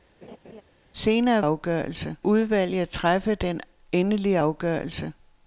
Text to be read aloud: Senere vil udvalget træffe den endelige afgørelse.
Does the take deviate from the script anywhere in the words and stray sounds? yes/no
yes